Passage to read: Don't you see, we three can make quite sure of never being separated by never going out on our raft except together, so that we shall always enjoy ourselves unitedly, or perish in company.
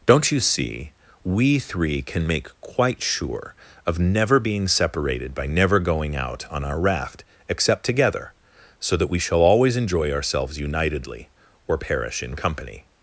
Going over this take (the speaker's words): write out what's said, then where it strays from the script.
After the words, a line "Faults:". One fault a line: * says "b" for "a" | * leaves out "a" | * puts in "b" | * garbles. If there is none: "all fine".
Don't you see, we three can make quite sure of never being separated by never going out on our raft except together, so that we shall always enjoy ourselves unitedly, or perish in company.
Faults:
all fine